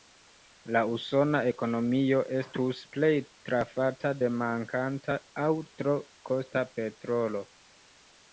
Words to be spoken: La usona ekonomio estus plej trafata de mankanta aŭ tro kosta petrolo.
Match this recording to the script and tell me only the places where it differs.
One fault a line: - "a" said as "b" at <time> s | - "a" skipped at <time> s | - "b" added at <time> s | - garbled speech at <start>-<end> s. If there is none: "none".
none